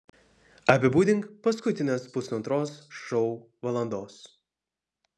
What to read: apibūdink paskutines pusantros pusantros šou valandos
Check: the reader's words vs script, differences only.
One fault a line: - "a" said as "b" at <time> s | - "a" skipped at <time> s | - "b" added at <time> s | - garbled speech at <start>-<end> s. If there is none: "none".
- "pusantros" skipped at 2.8 s